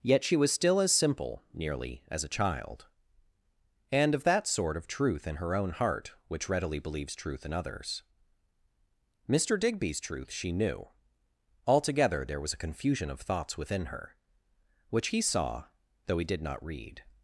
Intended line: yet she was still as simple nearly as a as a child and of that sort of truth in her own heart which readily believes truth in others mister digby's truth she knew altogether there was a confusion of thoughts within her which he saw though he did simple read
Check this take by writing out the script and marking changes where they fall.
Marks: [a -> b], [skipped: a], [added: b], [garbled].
yet she was still as simple nearly as a [skipped: as a] child and of that sort of truth in her own heart which readily believes truth in others mister digby's truth she knew altogether there was a confusion of thoughts within her which he saw though he did [simple -> not] read